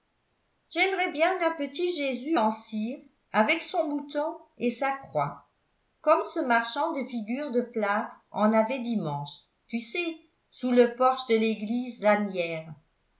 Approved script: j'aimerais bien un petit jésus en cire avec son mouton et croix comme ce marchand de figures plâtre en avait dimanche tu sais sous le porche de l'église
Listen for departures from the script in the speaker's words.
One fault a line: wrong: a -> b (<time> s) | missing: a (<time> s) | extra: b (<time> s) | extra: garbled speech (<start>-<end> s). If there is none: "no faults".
extra: sa (4.7 s)
extra: de (7.5 s)